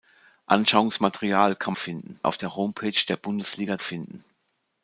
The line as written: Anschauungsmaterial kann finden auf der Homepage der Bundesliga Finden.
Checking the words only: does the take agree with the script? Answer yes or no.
yes